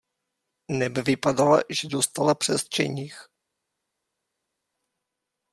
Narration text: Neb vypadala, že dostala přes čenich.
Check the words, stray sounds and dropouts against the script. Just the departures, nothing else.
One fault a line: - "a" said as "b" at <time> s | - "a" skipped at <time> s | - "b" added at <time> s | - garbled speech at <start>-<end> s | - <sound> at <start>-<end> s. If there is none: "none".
none